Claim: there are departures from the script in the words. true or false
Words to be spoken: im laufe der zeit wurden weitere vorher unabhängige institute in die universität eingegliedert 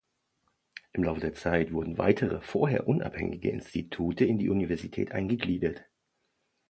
false